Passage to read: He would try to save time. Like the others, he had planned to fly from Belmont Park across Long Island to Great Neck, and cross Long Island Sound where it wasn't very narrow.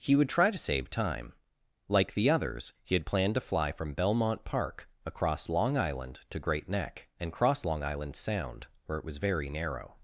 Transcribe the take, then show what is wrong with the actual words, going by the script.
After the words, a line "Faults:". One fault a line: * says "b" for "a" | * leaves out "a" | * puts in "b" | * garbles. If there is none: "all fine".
He would try to save time. Like the others, he had planned to fly from Belmont Park across Long Island to Great Neck, and cross Long Island Sound where it was very narrow.
Faults:
* says "was" for "wasn't"